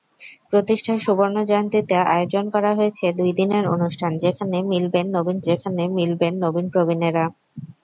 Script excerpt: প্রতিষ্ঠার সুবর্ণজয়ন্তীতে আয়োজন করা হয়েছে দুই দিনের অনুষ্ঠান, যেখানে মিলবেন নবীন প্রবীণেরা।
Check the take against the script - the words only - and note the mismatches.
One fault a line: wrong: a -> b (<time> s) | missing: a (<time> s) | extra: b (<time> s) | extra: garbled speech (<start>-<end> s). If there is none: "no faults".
extra: যেখানে মিলবেন নবীন (5.5 s)